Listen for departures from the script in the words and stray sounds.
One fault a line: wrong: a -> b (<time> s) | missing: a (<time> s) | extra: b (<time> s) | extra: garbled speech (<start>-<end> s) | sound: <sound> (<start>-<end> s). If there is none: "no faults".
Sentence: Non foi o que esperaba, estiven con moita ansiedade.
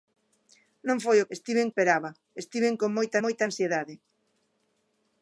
wrong: que -> estiven (1.4 s)
extra: moita (3.2 s)